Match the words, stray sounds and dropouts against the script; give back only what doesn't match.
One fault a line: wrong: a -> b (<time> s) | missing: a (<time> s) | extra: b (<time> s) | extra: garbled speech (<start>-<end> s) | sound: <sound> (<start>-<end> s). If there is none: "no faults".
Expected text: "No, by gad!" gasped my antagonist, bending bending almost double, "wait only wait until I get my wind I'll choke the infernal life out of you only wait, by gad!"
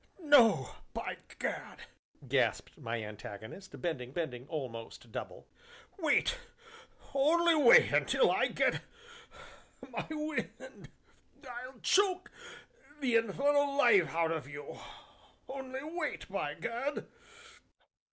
no faults